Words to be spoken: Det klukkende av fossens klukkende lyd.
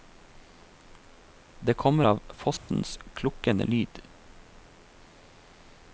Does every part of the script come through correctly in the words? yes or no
no